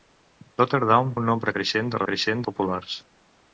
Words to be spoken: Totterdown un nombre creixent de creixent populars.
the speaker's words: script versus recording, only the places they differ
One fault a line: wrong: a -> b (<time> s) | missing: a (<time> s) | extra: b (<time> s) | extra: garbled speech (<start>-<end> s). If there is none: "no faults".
no faults